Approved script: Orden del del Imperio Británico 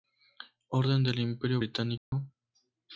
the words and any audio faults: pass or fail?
fail